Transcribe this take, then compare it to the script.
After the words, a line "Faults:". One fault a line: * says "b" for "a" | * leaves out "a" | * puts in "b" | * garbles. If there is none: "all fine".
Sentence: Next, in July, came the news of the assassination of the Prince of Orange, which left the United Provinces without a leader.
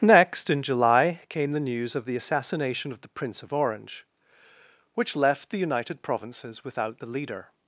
Next, in July, came the news of the assassination of the Prince of Orange, which left the United Provinces without the leader.
Faults:
* says "the" for "a"